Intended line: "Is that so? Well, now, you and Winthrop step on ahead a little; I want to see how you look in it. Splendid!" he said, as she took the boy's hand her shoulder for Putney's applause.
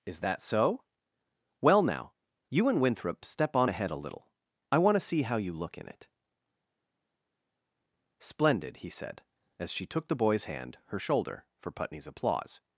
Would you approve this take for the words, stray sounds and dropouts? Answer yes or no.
yes